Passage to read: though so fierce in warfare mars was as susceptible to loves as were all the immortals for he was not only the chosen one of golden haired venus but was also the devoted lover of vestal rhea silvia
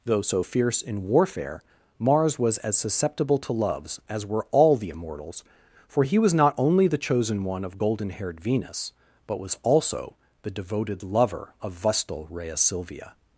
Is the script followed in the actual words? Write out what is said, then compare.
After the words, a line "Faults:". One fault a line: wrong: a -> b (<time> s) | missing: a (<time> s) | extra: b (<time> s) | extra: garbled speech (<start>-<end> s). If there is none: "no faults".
though so fierce in warfare mars was as susceptible to loves as were all the immortals for he was not only the chosen one of golden haired venus but was also the devoted lover of vestal rhea silvia
Faults:
no faults